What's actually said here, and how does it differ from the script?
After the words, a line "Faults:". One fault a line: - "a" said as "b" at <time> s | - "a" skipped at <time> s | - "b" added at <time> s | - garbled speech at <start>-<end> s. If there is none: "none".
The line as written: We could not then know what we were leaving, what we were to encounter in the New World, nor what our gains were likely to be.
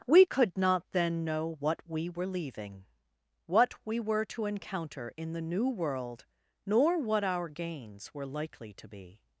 We could not then know what we were leaving, what we were to encounter in the New World, nor what our gains were likely to be.
Faults:
none